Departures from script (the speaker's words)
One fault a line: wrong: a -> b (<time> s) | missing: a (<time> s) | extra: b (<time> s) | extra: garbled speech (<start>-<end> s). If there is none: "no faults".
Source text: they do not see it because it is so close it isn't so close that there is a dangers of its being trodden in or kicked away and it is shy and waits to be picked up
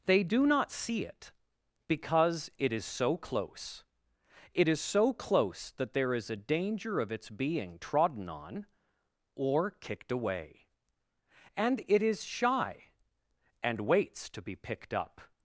wrong: isn't -> is (4.7 s)
wrong: dangers -> danger (6.3 s)
wrong: in -> on (8.3 s)